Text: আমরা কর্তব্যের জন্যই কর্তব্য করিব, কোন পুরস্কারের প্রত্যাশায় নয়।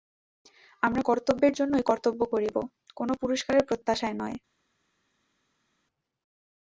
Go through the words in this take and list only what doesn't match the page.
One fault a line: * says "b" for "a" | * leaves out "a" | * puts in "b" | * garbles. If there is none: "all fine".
all fine